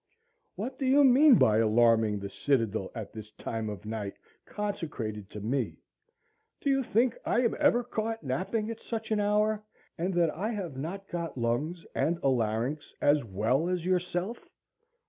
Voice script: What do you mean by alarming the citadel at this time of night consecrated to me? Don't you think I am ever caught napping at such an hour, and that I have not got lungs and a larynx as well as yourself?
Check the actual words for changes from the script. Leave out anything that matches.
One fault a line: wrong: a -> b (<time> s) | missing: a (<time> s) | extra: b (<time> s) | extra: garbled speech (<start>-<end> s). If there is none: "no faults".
wrong: Don't -> Do (6.6 s)